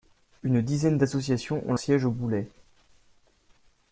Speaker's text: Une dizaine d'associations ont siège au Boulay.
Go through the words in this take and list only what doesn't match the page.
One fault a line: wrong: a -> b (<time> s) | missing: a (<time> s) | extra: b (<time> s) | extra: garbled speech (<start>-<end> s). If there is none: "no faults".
no faults